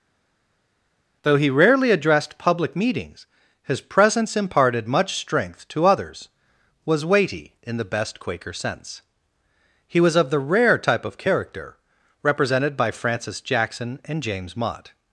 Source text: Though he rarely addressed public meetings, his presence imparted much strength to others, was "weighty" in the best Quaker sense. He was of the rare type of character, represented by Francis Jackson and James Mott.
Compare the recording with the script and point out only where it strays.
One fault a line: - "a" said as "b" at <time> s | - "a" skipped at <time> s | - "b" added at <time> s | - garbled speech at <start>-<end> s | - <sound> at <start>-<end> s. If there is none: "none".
none